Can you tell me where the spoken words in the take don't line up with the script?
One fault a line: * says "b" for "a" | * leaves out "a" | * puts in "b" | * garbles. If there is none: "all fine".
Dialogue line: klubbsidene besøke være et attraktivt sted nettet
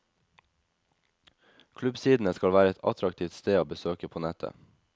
* says "skal" for "besøke"
* puts in "å besøke på"